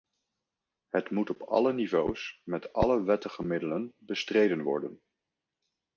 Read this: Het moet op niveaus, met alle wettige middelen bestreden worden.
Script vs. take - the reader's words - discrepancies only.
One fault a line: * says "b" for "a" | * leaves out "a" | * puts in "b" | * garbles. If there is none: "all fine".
* puts in "alle"